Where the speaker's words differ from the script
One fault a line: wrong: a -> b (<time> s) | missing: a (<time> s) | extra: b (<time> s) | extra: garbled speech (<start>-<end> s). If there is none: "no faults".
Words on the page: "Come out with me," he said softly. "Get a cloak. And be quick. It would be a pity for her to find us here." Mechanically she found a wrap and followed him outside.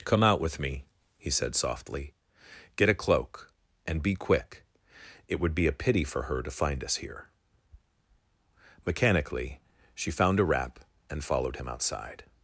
no faults